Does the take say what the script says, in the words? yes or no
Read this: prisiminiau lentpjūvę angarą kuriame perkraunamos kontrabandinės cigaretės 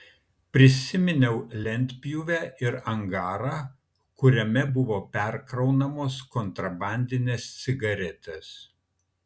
no